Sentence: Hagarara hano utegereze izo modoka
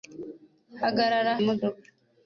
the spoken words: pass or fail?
fail